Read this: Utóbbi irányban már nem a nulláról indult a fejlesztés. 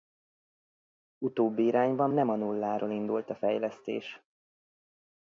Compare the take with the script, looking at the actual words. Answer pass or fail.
fail